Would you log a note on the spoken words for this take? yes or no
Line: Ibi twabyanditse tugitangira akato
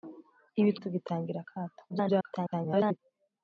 yes